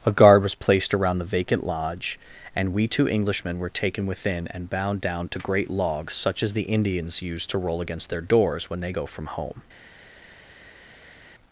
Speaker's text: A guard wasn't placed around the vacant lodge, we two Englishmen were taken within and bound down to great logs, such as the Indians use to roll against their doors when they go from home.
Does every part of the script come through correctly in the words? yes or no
no